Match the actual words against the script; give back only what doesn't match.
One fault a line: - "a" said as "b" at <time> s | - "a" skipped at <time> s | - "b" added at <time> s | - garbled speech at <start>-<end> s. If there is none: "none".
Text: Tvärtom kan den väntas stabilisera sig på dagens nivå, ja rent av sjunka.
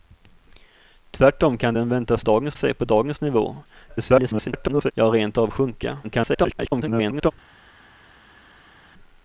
- "stabilisera" said as "dagens" at 2.2 s
- garbled speech at 3.9-4.9 s
- garbled speech at 6.0-7.3 s